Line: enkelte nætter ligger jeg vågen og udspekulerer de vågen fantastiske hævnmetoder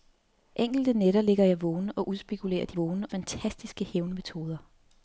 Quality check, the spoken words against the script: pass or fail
pass